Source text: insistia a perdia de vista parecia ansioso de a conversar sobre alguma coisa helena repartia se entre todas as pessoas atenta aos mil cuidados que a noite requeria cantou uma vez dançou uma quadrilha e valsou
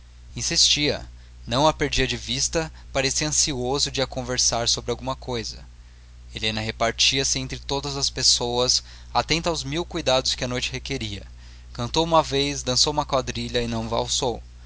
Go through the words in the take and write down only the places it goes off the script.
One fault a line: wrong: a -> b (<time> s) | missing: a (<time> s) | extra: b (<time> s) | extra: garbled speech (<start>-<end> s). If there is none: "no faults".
extra: não (1.4 s)
extra: não (13.7 s)